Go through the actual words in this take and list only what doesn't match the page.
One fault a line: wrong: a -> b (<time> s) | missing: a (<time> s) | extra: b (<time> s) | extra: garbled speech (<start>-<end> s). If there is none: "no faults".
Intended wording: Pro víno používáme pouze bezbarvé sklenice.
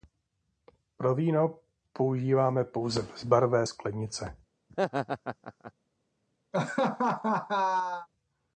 no faults